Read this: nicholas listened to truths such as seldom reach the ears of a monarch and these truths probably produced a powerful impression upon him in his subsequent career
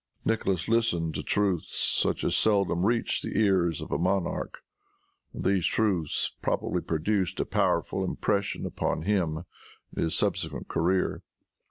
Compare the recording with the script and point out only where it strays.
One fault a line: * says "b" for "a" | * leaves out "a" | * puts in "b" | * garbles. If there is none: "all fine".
all fine